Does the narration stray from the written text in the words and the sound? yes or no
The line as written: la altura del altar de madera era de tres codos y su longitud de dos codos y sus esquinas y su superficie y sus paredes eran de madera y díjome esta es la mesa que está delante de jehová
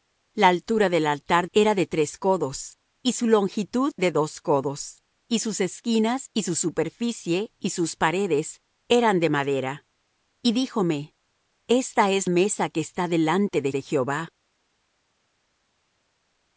yes